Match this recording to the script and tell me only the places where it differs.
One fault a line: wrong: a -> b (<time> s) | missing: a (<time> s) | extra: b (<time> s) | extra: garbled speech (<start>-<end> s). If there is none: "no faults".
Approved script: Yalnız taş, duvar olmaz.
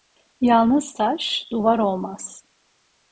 no faults